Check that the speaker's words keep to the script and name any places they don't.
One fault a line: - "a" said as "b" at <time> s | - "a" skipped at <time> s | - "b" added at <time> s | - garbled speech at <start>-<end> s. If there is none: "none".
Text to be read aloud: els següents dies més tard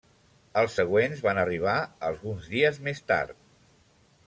- "van arribar alguns" added at 1.2 s